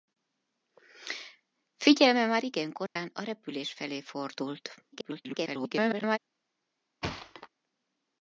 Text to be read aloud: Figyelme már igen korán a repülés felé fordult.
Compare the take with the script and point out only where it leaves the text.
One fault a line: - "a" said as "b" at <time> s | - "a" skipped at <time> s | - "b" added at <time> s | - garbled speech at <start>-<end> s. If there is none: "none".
- garbled speech at 4.9-6.2 s